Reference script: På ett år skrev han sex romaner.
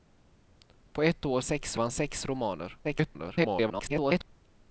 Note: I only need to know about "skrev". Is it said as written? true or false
false